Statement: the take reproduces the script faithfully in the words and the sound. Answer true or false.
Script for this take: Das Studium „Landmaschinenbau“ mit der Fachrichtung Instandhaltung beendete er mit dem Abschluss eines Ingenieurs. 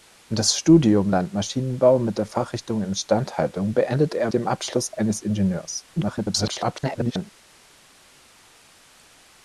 false